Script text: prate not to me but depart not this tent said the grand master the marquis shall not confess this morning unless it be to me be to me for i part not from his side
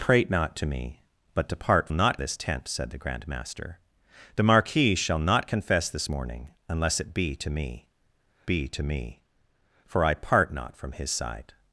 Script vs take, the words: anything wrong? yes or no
no